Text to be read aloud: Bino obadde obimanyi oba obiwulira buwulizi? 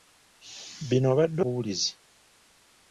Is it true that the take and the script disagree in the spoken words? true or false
true